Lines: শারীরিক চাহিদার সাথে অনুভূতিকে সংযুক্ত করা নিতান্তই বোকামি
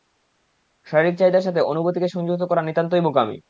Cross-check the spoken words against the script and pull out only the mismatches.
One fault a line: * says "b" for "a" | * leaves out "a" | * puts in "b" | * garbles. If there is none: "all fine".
all fine